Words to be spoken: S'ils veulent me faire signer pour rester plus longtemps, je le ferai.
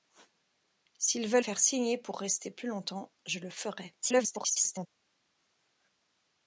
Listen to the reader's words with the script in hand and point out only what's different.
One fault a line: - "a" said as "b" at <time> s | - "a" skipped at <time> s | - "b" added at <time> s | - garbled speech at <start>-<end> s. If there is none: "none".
- "me" skipped at 1.4 s
- garbled speech at 4.0-4.9 s